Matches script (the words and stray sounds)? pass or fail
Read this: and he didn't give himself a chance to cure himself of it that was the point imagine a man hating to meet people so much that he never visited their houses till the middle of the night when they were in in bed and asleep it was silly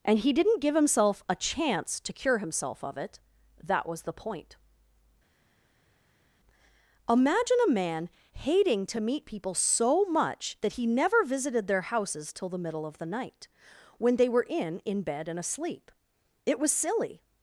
pass